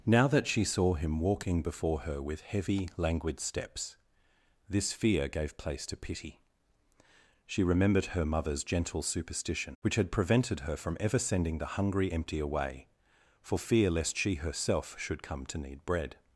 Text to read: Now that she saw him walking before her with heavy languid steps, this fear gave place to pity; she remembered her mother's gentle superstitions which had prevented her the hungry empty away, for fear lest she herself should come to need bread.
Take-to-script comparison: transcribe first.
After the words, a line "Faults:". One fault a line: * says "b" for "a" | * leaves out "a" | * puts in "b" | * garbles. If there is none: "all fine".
Now that she saw him walking before her with heavy languid steps, this fear gave place to pity; she remembered her mother's gentle superstition which had prevented her from ever sending the hungry empty away, for fear lest she herself should come to need bread.
Faults:
* says "superstition" for "superstitions"
* puts in "from ever sending"